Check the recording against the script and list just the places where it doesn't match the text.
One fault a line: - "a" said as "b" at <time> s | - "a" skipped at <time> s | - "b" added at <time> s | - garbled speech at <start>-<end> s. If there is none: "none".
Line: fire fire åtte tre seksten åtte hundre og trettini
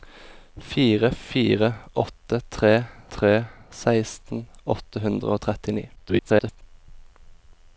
- "tre" added at 3.2 s
- garbled speech at 6.0-6.6 s